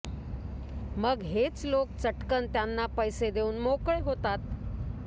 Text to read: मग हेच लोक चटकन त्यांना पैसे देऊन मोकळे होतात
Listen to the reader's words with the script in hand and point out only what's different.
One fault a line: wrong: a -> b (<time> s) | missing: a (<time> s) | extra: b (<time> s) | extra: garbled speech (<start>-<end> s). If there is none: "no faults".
no faults